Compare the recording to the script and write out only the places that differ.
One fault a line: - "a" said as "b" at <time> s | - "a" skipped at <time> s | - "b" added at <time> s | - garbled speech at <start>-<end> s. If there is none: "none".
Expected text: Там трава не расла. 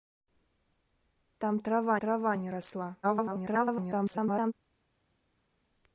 - "трава" added at 2.0 s
- garbled speech at 3.0-4.5 s